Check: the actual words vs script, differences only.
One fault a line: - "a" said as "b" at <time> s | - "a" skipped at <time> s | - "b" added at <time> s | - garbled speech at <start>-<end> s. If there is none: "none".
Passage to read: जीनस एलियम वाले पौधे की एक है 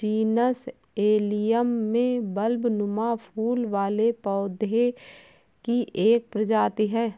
- "में बल्बनुमा फूल" added at 1.9 s
- "प्रजाति" added at 6.3 s